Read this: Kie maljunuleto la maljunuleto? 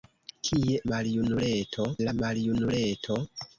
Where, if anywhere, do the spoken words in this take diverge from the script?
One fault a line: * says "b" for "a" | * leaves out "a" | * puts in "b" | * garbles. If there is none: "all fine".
all fine